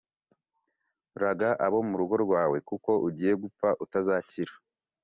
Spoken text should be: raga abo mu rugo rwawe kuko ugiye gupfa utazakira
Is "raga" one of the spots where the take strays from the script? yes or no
no